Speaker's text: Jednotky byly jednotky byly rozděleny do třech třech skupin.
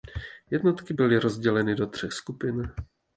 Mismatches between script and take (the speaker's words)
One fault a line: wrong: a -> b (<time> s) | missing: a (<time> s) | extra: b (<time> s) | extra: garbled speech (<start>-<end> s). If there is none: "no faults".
missing: jednotky byly (1.2 s)
missing: třech (2.1 s)